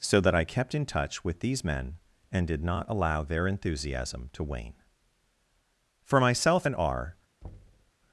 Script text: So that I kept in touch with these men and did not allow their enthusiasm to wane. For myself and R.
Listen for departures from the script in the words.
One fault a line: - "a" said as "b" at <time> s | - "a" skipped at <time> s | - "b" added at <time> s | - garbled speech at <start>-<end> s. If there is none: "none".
none